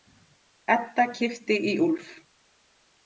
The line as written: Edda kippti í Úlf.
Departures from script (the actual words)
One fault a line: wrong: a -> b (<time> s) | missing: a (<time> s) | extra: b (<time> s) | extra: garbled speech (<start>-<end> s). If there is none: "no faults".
no faults